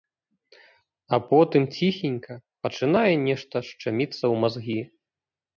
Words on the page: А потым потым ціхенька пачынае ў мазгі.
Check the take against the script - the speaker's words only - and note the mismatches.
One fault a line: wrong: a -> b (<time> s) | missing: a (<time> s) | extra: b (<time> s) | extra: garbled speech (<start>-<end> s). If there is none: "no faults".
missing: потым (1.7 s)
extra: нешта шчаміцца (3.3 s)